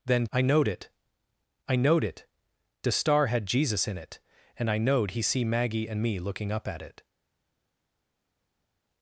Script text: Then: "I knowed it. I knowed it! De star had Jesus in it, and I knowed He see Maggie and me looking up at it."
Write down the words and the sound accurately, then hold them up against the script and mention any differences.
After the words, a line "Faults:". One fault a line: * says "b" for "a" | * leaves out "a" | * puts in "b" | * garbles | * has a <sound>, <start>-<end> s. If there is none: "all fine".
Then: "I knowed it. I knowed it! De star had Jesus in it, and I knowed He see Maggie and me looking up at it."
Faults:
all fine